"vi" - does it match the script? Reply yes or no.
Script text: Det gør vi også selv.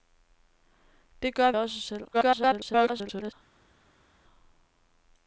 no